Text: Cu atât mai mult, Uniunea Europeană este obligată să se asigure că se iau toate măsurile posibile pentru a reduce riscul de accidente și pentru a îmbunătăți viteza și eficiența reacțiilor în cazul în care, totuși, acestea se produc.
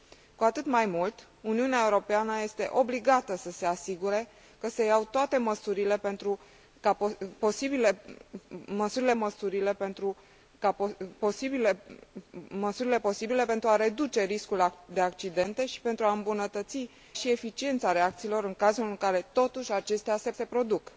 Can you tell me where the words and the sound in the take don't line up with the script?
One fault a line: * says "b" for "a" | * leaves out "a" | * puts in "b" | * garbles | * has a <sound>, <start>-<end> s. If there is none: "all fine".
* puts in "măsurile"
* leaves out "viteza"
* puts in "se"